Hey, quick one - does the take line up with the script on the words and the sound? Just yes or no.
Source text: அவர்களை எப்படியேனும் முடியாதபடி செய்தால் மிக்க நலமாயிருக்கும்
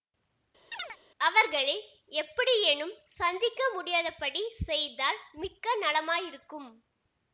no